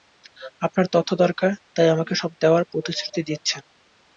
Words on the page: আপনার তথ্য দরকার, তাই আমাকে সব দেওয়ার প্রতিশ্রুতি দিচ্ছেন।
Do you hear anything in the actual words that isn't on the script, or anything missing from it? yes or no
no